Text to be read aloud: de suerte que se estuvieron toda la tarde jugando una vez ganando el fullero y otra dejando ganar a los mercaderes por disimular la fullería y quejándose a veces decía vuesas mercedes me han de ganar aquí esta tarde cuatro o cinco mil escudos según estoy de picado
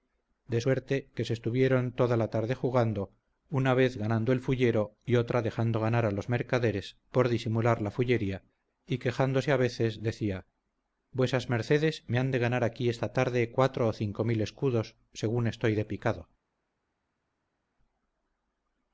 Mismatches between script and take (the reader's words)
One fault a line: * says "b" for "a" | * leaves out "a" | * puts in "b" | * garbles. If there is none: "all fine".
all fine